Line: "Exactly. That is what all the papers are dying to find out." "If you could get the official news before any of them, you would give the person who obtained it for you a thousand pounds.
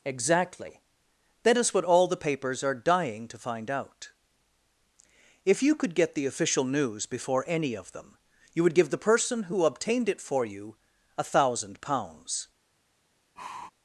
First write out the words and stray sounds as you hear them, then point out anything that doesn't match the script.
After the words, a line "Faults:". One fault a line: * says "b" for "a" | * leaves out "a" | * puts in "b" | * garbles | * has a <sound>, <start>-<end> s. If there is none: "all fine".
"Exactly. That is what all the papers are dying to find out." "If you could get the official news before any of them, you would give the person who obtained it for you a thousand pounds.
Faults:
* has a sigh, 13.4-13.7 s